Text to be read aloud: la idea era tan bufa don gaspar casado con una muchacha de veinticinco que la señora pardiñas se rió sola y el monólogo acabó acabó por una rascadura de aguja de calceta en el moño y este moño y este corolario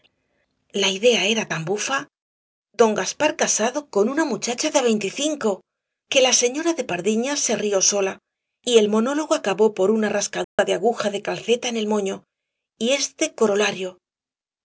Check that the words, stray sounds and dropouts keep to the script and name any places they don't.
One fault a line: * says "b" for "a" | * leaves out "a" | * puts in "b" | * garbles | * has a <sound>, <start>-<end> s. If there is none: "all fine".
* puts in "de"
* leaves out "acabó"
* has a dropout, 10.4-10.6 s
* leaves out "moño y este"